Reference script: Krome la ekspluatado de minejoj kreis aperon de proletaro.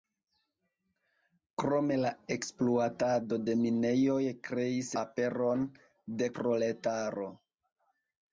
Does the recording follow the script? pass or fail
pass